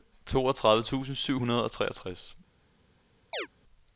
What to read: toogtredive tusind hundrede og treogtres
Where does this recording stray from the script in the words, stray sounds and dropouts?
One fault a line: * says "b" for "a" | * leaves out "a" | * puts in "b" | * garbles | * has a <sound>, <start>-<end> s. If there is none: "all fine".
* puts in "syv"
* has a chirp, 3.3-3.5 s